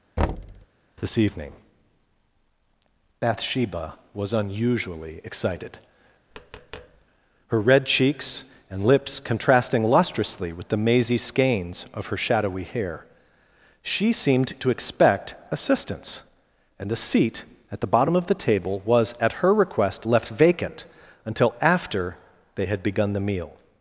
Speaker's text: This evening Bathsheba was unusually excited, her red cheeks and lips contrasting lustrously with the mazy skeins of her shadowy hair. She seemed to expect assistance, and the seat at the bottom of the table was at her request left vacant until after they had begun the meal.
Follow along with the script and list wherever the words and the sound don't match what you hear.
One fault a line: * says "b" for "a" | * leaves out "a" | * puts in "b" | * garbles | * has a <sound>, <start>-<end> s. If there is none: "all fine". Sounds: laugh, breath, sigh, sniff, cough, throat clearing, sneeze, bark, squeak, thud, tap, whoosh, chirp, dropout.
* has a thud, 0.2-0.7 s
* has a tap, 6.3-7.1 s